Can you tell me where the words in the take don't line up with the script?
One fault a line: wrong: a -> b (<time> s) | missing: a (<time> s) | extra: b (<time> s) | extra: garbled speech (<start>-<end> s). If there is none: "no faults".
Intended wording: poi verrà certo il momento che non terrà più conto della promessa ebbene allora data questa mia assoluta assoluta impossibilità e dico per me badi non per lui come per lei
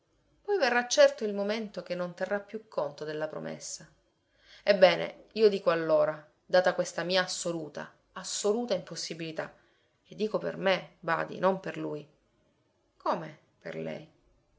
extra: io dico (5.3 s)